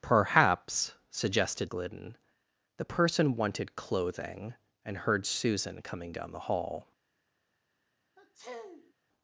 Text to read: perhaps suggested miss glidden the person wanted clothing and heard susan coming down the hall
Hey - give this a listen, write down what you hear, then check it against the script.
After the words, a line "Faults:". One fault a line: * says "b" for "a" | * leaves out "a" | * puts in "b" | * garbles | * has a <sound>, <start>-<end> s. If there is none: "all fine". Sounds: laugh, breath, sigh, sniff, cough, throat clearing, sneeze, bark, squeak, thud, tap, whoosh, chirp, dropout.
perhaps suggested glidden the person wanted clothing and heard susan coming down the hall
Faults:
* leaves out "miss"
* has a sniff, 8.2-8.9 s